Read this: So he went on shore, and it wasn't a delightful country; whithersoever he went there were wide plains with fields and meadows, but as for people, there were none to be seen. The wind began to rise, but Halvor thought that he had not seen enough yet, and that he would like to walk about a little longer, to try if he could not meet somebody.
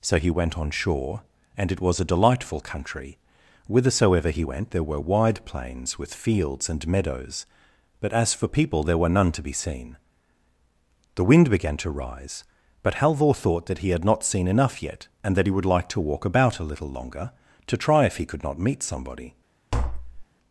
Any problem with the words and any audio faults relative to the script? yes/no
yes